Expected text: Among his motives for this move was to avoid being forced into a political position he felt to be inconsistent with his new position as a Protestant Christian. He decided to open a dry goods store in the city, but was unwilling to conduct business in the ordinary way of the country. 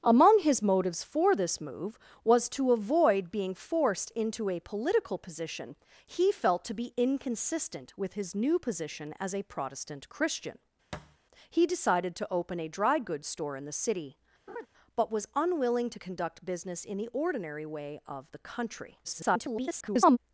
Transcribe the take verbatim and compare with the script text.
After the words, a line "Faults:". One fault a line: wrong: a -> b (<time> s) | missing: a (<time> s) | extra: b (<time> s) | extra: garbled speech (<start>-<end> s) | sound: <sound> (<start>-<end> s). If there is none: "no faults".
Among his motives for this move was to avoid being forced into a political position he felt to be inconsistent with his new position as a Protestant Christian. He decided to open a dry goods store in the city, but was unwilling to conduct business in the ordinary way of the country. [garbled]
Faults:
sound: thud (10.9-11.2 s)
sound: laugh (14.5-14.7 s)
extra: garbled speech (19.0-20.2 s)